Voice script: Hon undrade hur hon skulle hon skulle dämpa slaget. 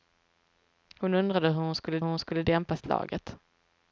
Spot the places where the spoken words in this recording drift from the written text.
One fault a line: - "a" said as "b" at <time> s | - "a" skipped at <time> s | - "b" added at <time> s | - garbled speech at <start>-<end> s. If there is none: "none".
none